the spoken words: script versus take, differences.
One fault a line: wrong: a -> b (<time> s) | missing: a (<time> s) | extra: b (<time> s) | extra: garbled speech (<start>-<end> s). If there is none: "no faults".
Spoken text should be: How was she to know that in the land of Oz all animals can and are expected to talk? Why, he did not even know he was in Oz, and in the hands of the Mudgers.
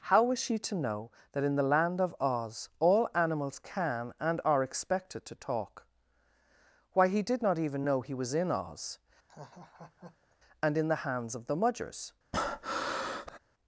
no faults